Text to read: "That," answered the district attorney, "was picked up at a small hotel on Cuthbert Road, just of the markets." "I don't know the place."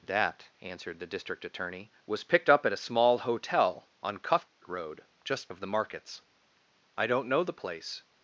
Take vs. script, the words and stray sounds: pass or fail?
fail